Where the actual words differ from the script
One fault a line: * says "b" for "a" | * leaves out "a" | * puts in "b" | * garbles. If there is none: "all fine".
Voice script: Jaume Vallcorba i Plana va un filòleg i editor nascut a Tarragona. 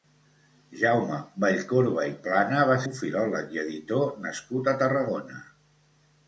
all fine